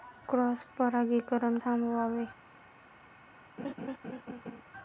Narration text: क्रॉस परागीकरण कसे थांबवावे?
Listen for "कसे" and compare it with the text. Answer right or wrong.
wrong